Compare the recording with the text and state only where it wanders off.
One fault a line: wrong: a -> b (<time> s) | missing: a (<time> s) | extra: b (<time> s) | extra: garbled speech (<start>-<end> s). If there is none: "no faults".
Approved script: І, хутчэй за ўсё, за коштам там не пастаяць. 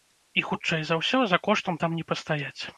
no faults